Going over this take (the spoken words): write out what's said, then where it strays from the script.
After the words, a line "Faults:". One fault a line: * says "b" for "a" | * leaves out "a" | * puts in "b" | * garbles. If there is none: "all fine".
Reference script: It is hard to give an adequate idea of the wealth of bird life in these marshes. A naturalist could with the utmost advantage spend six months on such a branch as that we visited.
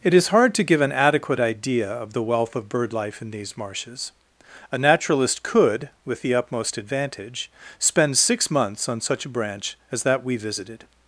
It is hard to give an adequate idea of the wealth of bird life in these marshes. A naturalist could with the utmost advantage spend six months on such a branch as that we visited.
Faults:
all fine